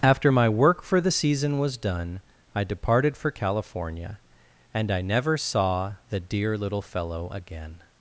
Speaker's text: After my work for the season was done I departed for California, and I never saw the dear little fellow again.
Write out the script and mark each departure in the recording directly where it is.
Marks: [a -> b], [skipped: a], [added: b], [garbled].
After my work for the season was done I departed for California, and I never saw the dear little fellow again.